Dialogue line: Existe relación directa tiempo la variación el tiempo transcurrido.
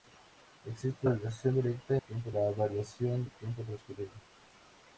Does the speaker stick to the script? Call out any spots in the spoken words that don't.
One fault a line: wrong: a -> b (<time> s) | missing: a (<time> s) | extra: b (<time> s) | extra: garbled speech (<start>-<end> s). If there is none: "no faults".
no faults